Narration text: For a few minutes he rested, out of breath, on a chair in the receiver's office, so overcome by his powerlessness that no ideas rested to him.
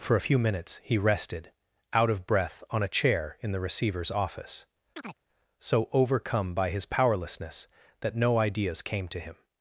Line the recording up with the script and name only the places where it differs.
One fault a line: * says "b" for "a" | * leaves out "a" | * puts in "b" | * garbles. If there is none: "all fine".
* says "came" for "rested"